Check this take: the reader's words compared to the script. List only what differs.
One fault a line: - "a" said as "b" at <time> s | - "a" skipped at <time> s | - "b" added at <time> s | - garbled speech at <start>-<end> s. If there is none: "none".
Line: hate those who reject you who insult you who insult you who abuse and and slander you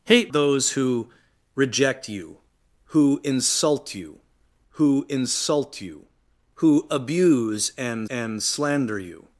none